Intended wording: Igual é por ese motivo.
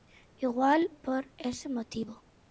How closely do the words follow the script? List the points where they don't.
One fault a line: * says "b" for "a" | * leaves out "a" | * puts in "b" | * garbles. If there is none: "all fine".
* leaves out "é"